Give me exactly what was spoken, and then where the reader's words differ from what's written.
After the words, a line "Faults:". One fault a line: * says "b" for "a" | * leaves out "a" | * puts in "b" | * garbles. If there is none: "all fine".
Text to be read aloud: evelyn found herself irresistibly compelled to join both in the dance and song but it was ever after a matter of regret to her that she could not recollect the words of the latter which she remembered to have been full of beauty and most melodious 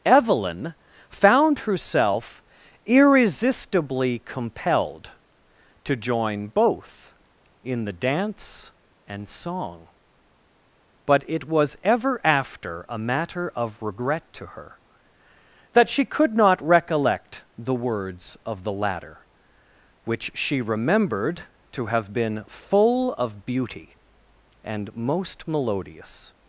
evelyn found herself irresistibly compelled to join both in the dance and song but it was ever after a matter of regret to her that she could not recollect the words of the latter which she remembered to have been full of beauty and most melodious
Faults:
all fine